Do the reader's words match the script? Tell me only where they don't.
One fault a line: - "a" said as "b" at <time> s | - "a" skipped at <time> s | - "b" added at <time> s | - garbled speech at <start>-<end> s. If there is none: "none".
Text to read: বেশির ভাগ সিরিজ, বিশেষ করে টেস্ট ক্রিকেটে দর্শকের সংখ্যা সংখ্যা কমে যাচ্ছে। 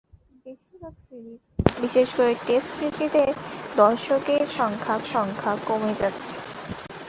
none